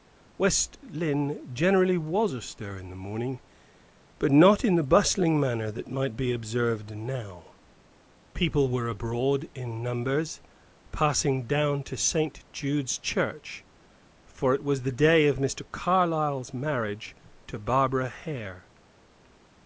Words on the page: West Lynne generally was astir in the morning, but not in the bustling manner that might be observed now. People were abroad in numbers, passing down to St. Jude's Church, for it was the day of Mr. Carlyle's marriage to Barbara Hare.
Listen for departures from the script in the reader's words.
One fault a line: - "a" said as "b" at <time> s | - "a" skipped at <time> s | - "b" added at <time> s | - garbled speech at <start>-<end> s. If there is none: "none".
none